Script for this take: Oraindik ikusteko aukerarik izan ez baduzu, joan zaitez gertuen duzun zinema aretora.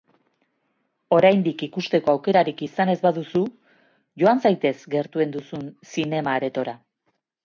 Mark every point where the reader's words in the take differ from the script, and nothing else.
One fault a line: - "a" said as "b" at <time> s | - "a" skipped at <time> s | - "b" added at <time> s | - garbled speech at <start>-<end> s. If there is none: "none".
none